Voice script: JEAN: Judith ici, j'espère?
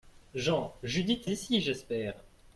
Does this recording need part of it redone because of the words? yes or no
no